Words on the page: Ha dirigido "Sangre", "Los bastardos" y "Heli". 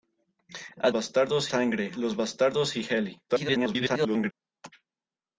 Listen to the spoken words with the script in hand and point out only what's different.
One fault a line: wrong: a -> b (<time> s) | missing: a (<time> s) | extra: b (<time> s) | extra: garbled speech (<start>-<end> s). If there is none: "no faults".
wrong: dirigido -> bastardos (0.9 s)
extra: garbled speech (3.3-4.3 s)